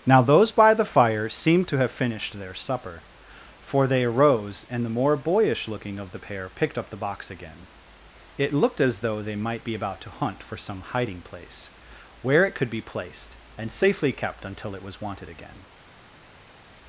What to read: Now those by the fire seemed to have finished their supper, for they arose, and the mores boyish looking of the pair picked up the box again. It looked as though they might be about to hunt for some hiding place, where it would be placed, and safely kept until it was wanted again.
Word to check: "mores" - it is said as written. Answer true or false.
false